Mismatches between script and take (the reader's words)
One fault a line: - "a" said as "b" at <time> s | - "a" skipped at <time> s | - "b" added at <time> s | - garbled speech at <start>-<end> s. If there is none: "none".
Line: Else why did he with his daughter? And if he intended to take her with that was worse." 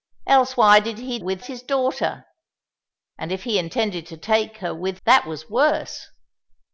none